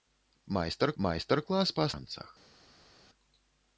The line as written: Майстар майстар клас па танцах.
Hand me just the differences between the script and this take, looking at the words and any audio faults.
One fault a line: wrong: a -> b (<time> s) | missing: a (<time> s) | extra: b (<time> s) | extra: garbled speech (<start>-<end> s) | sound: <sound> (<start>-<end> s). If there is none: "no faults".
no faults